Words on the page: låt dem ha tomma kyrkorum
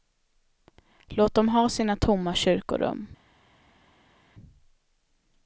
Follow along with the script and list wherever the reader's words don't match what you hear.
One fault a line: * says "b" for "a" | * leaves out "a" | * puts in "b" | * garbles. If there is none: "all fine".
* puts in "sina"